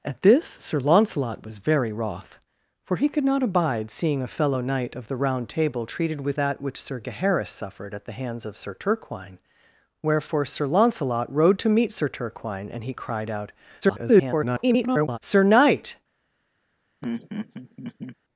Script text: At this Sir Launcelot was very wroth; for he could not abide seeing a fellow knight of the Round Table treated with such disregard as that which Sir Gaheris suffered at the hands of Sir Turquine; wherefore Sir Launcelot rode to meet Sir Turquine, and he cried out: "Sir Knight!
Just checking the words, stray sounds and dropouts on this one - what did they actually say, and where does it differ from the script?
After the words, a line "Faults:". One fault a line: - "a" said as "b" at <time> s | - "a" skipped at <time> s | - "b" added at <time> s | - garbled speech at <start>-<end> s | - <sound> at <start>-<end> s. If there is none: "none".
At this Sir Launcelot was very wroth; for he could not abide seeing a fellow knight of the Round Table treated with that which Sir Gaheris suffered at the hands of Sir Turquine; wherefore Sir Launcelot rode to meet Sir Turquine, and he cried out: [garbled] "Sir Knight!
Faults:
- "such disregard as" skipped at 6.4 s
- garbled speech at 13.8-15.2 s
- laugh at 17.0-18.2 s